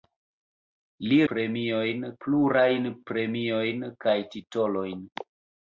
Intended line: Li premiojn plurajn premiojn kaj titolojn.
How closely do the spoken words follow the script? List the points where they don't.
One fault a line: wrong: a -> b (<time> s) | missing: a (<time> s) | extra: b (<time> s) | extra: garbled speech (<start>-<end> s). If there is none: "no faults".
no faults